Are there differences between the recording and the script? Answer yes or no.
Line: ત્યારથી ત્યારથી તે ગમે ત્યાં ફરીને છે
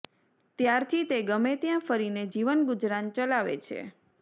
yes